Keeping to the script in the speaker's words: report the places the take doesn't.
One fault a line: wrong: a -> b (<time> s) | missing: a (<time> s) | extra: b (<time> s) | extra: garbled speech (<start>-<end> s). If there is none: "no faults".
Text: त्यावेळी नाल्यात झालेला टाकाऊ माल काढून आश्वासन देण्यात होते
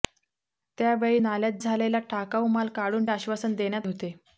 no faults